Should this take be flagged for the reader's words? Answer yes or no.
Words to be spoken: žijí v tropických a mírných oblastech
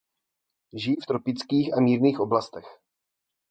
no